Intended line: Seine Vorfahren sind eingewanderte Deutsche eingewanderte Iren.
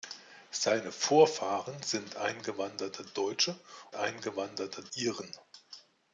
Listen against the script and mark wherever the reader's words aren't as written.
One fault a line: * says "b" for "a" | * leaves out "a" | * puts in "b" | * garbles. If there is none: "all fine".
all fine